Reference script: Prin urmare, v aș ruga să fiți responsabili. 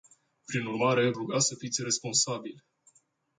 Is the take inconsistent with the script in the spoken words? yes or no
yes